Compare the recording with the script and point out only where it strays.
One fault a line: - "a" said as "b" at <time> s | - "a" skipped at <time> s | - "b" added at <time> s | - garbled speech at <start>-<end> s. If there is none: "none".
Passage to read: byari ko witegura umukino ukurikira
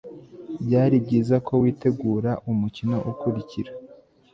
- "byiza" added at 1.1 s